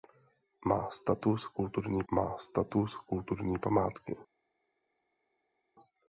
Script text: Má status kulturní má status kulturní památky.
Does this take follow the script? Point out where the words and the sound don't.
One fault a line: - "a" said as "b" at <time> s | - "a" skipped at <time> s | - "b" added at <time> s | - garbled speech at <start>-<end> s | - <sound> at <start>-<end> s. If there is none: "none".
none